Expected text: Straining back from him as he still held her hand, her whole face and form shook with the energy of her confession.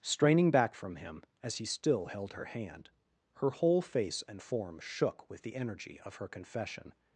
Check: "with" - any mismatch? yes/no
no